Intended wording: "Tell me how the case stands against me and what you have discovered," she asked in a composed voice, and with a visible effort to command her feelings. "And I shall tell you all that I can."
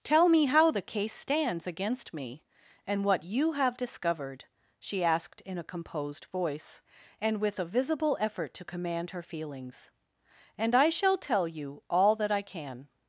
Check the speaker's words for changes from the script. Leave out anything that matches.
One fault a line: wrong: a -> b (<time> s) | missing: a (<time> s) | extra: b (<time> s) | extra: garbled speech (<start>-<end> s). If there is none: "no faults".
no faults